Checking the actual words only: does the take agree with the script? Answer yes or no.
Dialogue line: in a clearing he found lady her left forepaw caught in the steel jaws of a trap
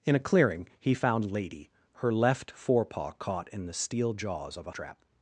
yes